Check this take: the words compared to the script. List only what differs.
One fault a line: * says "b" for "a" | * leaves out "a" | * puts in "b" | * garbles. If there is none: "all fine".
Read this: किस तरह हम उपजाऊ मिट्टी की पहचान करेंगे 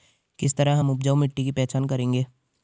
all fine